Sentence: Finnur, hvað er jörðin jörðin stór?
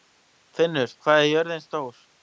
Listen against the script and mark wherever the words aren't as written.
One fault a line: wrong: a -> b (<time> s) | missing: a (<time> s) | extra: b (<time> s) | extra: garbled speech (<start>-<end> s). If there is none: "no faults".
missing: jörðin (1.7 s)